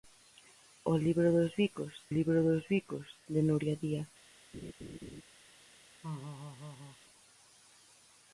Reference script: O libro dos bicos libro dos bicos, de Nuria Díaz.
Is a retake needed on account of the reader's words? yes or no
no